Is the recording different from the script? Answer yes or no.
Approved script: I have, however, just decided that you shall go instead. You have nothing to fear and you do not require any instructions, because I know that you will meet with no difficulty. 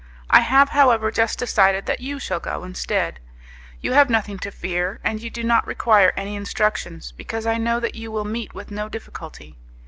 no